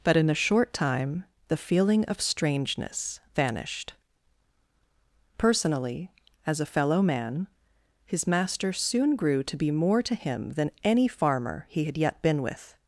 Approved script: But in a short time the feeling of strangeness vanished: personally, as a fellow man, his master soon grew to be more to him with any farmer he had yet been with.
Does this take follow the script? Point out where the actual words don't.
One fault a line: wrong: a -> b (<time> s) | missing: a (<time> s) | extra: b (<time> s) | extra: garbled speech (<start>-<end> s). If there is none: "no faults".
wrong: with -> than (10.5 s)